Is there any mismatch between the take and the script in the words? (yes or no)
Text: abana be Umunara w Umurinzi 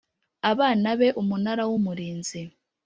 no